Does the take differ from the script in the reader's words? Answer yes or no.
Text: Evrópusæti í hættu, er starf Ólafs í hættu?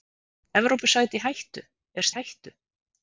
yes